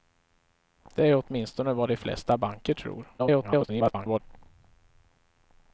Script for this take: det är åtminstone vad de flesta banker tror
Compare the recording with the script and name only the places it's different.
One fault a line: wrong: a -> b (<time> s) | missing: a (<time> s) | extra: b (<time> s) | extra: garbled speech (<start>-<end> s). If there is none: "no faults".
extra: garbled speech (3.2-4.2 s)